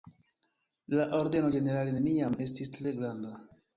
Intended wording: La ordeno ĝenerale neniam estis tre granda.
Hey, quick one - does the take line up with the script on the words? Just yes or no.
yes